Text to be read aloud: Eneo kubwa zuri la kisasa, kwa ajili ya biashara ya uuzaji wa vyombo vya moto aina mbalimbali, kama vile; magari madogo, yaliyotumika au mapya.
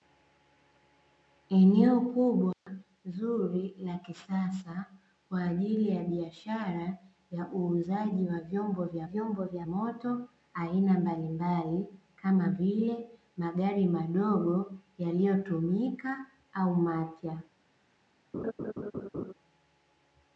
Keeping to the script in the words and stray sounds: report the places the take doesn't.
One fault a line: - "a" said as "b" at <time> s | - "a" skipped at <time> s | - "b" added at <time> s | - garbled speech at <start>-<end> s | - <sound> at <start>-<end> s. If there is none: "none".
- dropout at 2.5-2.7 s
- "vyombo vya" added at 9.0 s
- laugh at 18.3-19.3 s